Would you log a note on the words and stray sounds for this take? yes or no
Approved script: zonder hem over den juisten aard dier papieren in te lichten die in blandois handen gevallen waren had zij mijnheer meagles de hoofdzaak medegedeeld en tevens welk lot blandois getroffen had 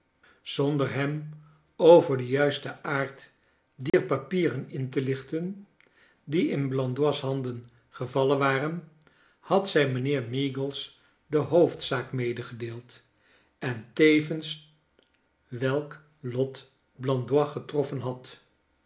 yes